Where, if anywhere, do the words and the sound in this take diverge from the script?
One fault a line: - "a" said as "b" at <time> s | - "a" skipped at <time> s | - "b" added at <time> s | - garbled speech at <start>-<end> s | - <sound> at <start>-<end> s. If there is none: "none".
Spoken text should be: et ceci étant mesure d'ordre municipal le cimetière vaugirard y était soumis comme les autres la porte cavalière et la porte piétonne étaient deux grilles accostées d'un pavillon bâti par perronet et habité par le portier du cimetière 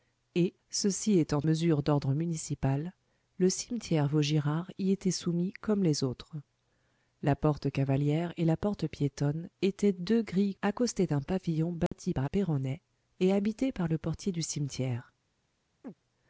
- dropout at 11.9-11.9 s
- chirp at 15.8-15.9 s